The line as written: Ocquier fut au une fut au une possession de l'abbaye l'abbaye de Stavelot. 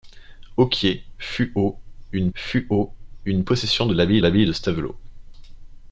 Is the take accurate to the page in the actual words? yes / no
yes